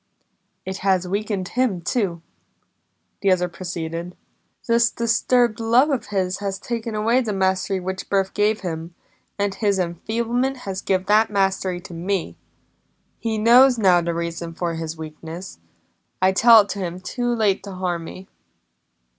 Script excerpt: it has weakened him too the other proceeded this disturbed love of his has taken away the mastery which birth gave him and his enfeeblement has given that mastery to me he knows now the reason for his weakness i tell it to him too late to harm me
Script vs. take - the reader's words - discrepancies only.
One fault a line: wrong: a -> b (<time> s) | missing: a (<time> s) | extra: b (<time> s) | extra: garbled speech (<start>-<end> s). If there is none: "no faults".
no faults